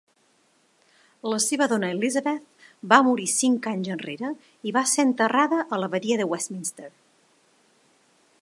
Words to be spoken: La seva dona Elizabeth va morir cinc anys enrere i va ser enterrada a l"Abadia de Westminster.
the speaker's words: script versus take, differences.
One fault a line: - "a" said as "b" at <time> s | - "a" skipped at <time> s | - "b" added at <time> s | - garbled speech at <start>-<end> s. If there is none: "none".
none